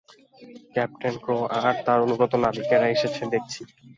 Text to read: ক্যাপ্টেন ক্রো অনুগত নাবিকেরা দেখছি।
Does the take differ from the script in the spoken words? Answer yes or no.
yes